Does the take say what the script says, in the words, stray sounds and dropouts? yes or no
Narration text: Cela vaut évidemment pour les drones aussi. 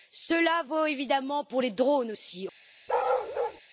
no